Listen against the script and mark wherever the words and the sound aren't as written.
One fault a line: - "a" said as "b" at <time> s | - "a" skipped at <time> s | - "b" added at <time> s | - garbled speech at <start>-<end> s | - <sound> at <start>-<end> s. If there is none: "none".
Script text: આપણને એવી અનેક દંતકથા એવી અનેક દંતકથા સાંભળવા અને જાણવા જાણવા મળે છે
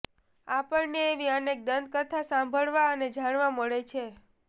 - "એવી અનેક દંતકથા" skipped at 2.2 s
- "જાણવા" skipped at 3.5 s